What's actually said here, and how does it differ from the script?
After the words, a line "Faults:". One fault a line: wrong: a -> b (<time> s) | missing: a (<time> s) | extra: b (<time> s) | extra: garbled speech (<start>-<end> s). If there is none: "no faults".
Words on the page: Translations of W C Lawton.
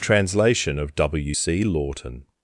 Translation of W C Lawton.
Faults:
wrong: Translations -> Translation (0.0 s)